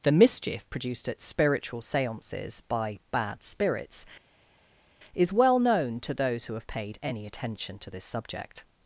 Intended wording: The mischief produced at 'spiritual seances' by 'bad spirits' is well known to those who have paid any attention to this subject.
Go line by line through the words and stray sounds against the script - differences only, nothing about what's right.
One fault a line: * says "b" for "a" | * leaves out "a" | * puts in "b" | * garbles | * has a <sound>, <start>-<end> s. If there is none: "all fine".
all fine